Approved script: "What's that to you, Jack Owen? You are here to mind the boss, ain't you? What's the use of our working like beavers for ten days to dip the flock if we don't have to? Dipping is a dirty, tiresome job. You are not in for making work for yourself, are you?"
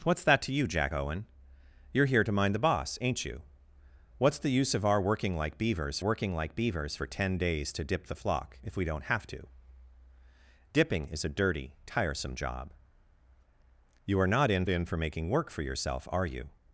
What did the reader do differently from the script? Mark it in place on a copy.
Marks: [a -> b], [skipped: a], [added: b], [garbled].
"What's that to you, Jack Owen? You are here to mind the boss, ain't you? What's the use of our working like beavers [added: working like beavers] for ten days to dip the flock if we don't have to? Dipping is a dirty, tiresome job. You are not in [added: in] for making work for yourself, are you?"